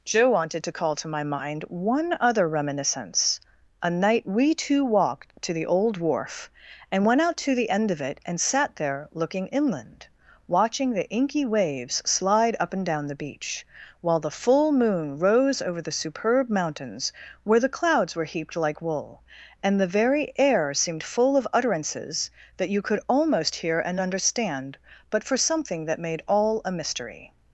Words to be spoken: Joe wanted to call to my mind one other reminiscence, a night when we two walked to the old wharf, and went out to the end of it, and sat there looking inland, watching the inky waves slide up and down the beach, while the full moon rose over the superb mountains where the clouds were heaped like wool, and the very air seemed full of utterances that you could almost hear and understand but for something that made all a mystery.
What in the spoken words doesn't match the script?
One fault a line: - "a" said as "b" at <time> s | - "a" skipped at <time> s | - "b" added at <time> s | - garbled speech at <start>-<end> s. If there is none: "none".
- "when" skipped at 4.2 s